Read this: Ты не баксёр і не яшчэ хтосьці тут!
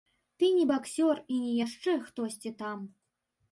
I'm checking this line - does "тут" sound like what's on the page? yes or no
no